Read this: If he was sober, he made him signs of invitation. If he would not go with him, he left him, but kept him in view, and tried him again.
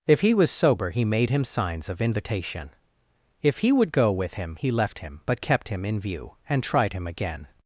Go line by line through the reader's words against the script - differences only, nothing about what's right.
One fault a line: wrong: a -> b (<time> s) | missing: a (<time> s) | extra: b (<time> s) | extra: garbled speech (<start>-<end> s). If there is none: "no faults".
missing: not (3.9 s)